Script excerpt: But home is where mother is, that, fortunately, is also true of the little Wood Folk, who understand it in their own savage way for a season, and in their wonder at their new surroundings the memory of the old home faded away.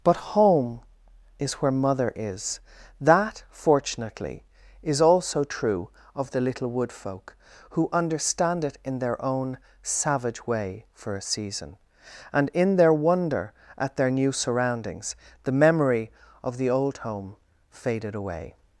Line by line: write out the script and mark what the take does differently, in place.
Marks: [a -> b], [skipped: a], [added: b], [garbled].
But home is where mother is, that, fortunately, is also true of the little Wood Folk, who understand it in their own savage way for a season, and in their wonder at their new surroundings the memory of the old home faded away.